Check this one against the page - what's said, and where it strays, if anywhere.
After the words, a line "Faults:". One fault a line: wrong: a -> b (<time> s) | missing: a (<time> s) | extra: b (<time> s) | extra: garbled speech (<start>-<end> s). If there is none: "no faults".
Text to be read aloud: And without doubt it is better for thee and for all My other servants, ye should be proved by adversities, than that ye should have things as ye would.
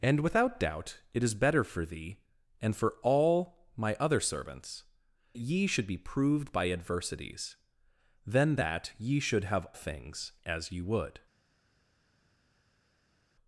And without doubt it is better for thee and for all My other servants, ye should be proved by adversities, than that ye should have things as ye would.
Faults:
no faults